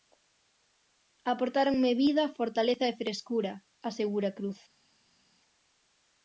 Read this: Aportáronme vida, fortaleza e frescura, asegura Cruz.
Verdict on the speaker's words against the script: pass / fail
pass